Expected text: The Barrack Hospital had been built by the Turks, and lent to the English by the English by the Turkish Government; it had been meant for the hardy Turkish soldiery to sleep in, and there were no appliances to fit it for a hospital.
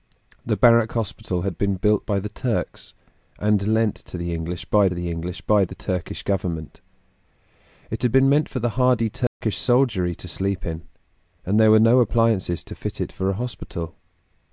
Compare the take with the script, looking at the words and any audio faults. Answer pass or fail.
fail